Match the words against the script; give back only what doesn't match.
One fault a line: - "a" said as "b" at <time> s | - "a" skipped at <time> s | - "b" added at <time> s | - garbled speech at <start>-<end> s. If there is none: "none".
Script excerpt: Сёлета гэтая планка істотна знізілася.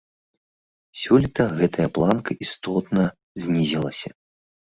none